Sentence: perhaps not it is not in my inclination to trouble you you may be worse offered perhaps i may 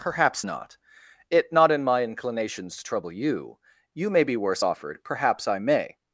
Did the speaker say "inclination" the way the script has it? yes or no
no